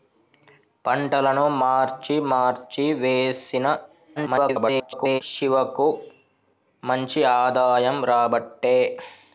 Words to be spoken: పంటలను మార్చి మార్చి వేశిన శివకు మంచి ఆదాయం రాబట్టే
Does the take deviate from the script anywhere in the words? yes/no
yes